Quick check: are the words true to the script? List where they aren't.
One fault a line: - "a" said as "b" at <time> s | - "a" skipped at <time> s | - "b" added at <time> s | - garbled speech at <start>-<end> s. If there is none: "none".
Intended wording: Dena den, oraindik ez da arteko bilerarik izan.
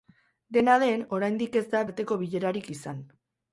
none